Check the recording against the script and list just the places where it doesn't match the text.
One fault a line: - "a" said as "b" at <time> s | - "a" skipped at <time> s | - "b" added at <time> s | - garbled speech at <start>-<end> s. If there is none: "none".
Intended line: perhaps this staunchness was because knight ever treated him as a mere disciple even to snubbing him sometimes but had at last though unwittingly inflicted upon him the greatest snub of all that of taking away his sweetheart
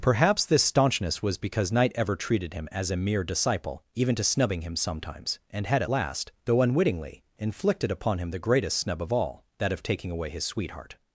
- "but" said as "and" at 5.5 s